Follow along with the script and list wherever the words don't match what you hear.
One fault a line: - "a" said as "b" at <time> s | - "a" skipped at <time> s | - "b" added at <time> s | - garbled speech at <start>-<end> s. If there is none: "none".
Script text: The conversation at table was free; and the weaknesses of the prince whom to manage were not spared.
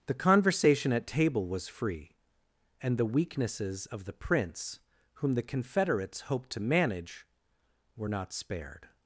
- "the confederates hoped" added at 5.3 s